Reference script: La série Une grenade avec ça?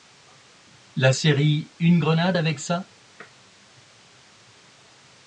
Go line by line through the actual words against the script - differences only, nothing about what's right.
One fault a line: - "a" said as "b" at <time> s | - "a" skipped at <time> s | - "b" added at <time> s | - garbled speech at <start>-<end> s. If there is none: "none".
none